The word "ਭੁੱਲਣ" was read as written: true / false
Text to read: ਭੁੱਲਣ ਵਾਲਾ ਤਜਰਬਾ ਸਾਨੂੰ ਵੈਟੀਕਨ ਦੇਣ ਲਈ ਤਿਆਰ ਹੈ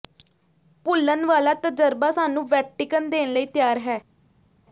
true